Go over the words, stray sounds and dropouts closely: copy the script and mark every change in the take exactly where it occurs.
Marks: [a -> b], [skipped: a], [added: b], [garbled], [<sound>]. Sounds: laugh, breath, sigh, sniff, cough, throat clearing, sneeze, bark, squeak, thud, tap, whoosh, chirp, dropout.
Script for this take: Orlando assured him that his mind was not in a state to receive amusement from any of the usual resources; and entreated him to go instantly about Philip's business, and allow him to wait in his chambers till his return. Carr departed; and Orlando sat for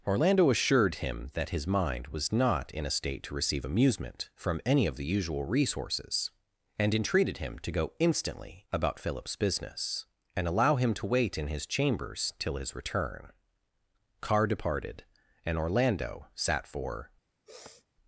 Orlando assured him that his mind was not in a state to receive amusement from any of the usual resources; and entreated him to go instantly about Philip's business, and allow him to wait in his chambers till his return. Carr departed; and Orlando sat for [sniff]